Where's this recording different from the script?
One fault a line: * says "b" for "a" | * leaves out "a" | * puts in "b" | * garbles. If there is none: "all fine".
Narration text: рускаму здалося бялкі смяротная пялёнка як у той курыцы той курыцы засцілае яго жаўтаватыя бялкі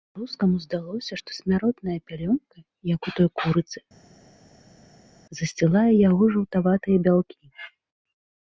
* says "што" for "бялкі"
* leaves out "той курыцы"